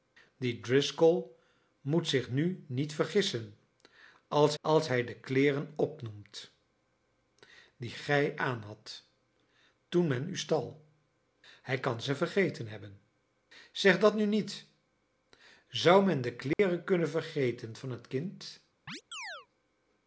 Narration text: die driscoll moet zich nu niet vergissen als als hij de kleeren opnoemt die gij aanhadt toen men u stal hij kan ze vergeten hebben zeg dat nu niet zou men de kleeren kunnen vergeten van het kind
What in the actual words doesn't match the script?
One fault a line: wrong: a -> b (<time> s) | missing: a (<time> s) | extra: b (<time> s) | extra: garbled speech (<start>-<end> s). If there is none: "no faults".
no faults